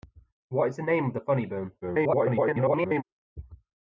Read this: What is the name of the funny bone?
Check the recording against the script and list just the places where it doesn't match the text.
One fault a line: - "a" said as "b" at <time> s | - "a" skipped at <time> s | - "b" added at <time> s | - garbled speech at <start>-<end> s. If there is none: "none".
- garbled speech at 1.8-3.0 s